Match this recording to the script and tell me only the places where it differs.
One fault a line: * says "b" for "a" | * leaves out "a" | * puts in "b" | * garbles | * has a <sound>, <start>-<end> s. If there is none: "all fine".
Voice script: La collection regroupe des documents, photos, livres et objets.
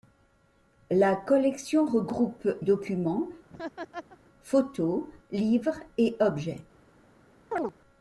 * leaves out "des"
* has a laugh, 3.5-4.2 s
* has a chirp, 7.5-7.7 s